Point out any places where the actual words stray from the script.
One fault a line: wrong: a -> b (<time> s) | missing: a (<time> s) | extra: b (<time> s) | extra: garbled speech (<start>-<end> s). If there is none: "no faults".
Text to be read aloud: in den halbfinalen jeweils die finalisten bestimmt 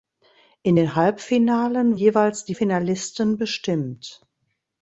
no faults